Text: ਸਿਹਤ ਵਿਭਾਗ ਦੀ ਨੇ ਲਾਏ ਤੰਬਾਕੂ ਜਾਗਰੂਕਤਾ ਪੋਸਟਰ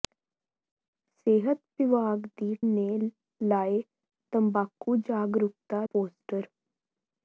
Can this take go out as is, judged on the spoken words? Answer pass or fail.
pass